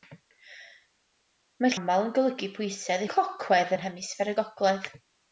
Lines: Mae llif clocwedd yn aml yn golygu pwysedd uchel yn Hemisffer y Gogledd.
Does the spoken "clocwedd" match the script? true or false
false